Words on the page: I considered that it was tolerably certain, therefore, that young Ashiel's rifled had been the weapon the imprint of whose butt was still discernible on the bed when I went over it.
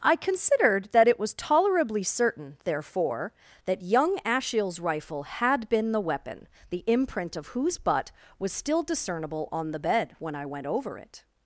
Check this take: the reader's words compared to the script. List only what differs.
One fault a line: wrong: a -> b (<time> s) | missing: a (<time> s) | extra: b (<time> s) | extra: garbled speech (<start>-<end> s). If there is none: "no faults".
wrong: rifled -> rifle (4.8 s)